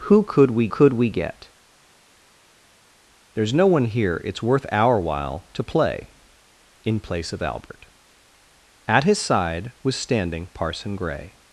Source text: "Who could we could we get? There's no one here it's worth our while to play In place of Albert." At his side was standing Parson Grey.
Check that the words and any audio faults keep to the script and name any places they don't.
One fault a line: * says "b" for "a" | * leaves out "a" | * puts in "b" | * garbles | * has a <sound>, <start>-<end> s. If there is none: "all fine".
all fine